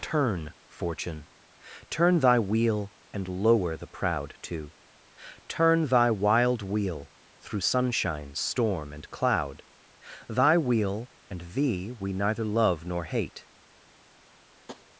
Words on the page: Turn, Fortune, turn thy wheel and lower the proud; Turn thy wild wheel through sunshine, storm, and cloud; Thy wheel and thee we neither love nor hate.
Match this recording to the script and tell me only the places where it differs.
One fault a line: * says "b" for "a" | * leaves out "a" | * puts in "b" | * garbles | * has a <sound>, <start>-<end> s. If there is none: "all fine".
* puts in "too"
* has a tap, 14.7-14.9 s